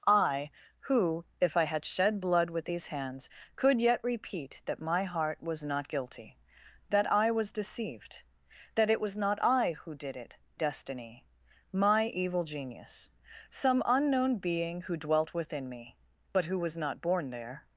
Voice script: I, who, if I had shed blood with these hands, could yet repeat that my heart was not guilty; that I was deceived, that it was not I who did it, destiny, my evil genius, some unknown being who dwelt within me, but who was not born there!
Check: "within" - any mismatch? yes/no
no